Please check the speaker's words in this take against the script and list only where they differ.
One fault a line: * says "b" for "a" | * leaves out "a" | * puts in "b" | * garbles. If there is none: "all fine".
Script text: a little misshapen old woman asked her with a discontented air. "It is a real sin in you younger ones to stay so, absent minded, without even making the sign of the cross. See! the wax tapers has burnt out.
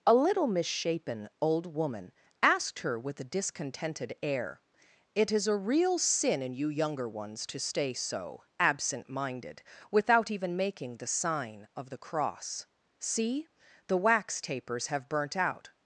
* says "have" for "has"